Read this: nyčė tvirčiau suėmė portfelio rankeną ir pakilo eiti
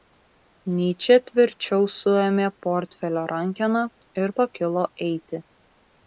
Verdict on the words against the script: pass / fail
pass